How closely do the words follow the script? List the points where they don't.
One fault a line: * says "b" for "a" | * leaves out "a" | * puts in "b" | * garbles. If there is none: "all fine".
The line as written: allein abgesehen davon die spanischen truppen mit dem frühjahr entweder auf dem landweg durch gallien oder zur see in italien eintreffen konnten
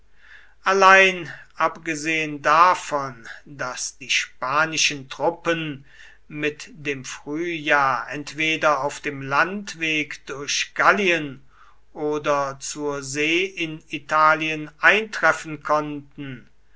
* puts in "daß"